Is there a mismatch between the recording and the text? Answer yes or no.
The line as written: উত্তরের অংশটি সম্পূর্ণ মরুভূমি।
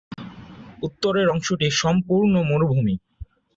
no